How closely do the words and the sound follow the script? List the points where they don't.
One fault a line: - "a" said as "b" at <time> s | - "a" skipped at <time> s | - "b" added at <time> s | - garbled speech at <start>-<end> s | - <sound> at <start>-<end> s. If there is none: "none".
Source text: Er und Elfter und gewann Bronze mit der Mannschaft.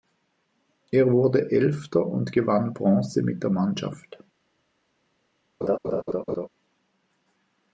- "und" said as "wurde" at 1.1 s
- laugh at 5.6-6.5 s